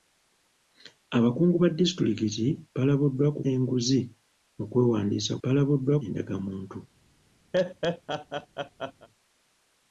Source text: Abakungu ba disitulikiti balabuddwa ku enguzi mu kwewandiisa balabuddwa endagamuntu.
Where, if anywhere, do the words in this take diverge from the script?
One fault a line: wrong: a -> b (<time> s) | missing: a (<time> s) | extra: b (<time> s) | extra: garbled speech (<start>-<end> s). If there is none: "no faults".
no faults